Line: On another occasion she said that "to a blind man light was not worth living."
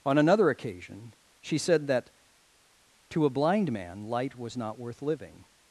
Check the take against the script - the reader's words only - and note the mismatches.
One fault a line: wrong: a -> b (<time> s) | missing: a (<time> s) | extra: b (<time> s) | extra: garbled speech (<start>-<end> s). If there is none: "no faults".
no faults